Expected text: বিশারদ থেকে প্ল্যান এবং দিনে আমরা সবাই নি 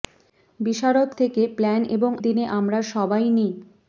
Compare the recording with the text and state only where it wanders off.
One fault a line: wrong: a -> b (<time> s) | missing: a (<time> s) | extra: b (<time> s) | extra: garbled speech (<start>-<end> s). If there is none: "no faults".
no faults